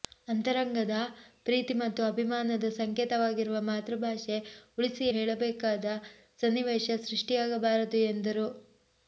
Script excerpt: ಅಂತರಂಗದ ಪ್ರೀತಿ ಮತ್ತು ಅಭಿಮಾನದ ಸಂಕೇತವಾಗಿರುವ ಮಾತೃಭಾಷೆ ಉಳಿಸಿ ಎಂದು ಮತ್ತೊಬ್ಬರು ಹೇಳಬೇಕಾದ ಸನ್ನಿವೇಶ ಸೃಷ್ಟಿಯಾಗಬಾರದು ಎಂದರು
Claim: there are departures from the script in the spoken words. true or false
true